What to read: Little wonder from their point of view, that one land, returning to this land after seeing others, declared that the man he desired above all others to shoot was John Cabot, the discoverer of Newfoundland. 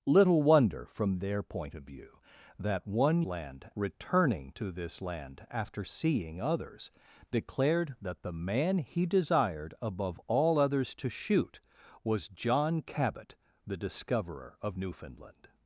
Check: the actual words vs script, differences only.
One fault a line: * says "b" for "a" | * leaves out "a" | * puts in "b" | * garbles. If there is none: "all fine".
all fine